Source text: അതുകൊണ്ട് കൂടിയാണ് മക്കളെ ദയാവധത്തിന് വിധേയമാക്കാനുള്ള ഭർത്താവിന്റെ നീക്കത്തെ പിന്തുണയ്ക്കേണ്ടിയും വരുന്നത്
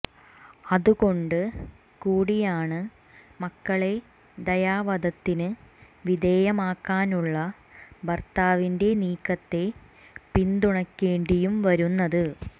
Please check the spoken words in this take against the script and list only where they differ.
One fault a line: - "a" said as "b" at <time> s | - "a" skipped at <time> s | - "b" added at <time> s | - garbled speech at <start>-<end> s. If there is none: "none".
none